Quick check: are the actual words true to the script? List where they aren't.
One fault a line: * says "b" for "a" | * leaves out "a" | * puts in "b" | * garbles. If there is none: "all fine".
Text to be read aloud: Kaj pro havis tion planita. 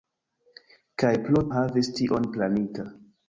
all fine